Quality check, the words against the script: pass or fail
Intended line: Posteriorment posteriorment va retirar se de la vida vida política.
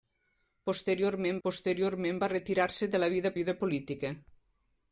pass